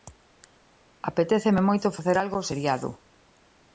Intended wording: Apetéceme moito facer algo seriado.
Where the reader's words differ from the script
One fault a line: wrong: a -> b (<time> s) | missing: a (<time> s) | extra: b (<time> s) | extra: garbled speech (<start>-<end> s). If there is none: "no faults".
no faults